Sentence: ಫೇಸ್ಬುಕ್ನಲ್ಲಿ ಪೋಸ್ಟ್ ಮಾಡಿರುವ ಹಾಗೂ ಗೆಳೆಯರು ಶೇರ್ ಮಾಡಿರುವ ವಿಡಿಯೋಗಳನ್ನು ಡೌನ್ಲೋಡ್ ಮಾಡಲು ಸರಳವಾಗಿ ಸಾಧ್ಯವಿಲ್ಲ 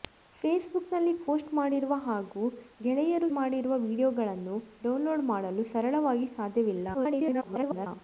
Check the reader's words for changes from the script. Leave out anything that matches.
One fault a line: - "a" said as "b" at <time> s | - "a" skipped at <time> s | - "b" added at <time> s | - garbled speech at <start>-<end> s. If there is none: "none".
- "ಶೇರ್" skipped at 3.3 s
- garbled speech at 6.9-7.9 s